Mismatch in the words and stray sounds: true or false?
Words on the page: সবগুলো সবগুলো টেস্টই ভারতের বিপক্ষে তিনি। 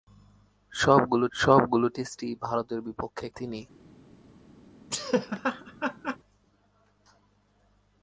true